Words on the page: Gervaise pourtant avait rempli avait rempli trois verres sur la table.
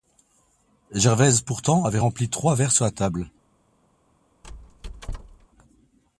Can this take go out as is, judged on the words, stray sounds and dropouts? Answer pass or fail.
fail